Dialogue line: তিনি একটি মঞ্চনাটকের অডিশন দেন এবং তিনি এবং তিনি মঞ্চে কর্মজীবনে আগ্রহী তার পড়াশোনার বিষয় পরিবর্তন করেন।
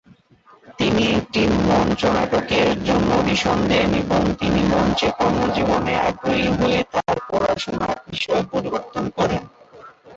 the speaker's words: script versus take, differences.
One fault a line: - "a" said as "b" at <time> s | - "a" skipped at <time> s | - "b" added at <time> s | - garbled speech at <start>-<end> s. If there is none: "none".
- "জন্য" added at 2.9 s
- "এবং তিনি" skipped at 4.6 s
- "হয়ে" added at 6.6 s